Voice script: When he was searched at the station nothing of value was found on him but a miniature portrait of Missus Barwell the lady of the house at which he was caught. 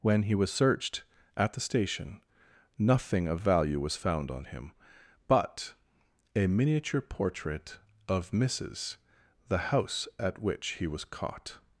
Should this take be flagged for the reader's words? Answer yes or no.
yes